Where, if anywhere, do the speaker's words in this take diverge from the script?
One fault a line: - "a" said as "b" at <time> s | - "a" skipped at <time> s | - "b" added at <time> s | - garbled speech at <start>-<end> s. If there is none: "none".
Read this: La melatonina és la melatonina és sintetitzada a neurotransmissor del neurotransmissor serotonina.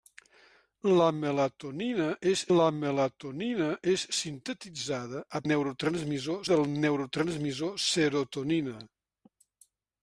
none